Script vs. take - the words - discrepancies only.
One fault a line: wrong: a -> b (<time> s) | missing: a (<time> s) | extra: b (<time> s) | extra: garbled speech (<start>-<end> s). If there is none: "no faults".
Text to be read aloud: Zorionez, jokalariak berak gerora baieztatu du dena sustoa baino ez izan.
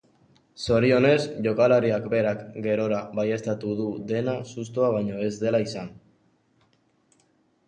extra: dela (5.5 s)